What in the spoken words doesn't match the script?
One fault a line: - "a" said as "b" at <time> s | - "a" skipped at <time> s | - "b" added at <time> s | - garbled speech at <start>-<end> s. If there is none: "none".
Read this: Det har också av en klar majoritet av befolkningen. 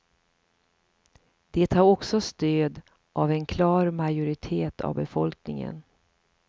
- "stöd" added at 2.2 s